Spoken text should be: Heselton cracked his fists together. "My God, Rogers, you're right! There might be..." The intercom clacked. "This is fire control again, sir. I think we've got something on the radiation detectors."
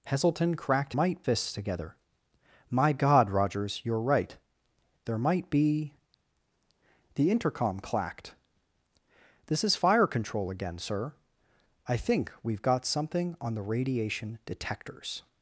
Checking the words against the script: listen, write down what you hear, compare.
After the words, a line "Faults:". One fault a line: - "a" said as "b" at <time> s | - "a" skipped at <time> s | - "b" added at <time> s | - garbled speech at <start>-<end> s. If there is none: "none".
Heselton cracked might fists together. "My God, Rogers, you're right! There might be..." The intercom clacked. "This is fire control again, sir. I think we've got something on the radiation detectors."
Faults:
- "his" said as "might" at 0.9 s